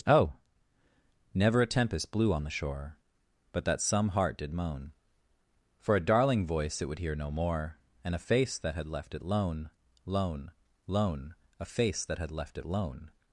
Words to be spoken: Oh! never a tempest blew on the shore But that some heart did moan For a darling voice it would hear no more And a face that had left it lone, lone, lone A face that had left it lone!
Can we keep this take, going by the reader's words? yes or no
yes